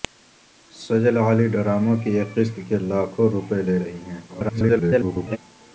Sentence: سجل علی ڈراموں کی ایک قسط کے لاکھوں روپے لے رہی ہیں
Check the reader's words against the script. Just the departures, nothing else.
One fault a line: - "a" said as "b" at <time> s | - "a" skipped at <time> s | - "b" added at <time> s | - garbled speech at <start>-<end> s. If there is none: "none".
- garbled speech at 4.3-5.4 s